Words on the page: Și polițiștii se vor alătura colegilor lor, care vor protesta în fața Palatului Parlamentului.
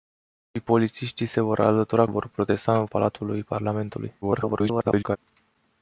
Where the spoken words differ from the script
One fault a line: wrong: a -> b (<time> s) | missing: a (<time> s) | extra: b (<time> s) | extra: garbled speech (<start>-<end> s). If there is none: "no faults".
missing: colegilor lor care (2.0 s)
missing: fața (2.9 s)
extra: garbled speech (4.2-5.2 s)